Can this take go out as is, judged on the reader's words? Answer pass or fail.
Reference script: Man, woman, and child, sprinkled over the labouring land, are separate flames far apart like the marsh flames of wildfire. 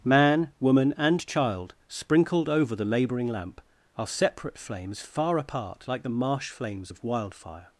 fail